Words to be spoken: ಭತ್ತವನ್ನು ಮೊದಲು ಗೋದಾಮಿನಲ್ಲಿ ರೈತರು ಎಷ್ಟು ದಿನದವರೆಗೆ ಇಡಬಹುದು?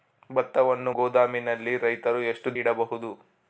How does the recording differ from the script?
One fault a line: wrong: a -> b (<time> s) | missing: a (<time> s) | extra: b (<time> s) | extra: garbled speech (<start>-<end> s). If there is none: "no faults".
missing: ಮೊದಲು (0.9 s)
missing: ದಿನದವರೆಗೆ (2.6 s)